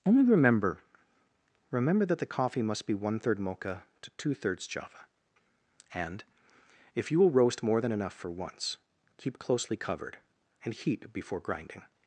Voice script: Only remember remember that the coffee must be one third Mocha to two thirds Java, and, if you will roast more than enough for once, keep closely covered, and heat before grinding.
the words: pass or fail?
pass